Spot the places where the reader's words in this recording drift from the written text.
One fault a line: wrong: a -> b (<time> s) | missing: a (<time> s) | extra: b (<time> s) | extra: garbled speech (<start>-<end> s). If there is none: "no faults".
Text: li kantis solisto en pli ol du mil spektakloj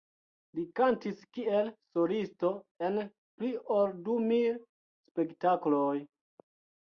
extra: kiel (1.4 s)